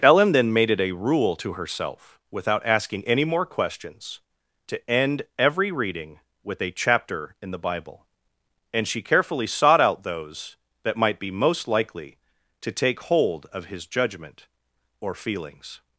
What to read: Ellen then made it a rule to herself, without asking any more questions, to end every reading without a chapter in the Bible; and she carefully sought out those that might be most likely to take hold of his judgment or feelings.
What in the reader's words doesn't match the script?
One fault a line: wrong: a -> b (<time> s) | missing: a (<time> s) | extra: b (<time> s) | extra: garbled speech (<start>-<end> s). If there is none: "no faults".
wrong: without -> with (6.4 s)